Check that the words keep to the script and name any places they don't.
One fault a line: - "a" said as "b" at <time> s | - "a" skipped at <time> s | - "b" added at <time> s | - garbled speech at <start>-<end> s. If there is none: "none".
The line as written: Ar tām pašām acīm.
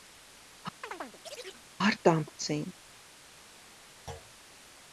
- "pašām" skipped at 2.2 s